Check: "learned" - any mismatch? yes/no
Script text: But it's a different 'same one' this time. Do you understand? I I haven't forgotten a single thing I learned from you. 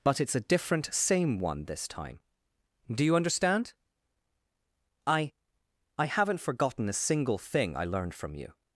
no